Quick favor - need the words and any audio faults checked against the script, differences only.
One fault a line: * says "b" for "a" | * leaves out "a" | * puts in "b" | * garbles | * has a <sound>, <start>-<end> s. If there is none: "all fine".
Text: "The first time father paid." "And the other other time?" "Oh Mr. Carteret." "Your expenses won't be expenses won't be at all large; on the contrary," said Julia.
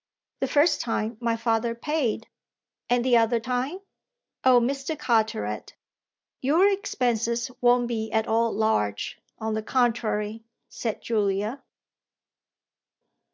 * puts in "my"
* leaves out "other"
* leaves out "expenses won't be"